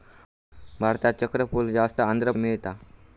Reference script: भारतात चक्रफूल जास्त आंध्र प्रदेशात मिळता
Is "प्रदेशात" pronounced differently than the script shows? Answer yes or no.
yes